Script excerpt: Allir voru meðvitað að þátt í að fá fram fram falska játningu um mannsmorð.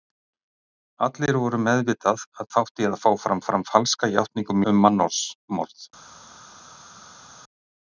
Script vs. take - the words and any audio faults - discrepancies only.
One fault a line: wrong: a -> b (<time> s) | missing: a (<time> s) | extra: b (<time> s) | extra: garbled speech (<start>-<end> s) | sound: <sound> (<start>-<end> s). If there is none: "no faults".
no faults